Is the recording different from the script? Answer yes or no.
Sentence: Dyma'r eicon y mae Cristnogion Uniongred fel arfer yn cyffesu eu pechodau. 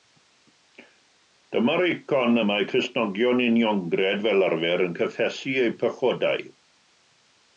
no